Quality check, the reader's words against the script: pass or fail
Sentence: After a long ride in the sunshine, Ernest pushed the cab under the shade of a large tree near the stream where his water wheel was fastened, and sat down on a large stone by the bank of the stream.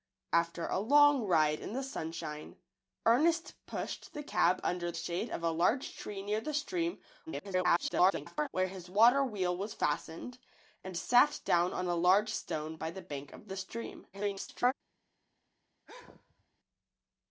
fail